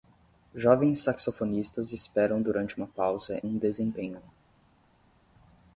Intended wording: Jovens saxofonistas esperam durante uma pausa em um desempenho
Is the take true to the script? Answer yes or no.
no